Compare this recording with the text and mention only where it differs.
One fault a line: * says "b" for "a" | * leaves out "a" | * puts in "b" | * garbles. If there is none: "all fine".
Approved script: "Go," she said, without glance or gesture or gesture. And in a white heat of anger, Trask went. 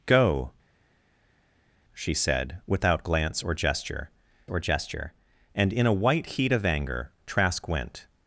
all fine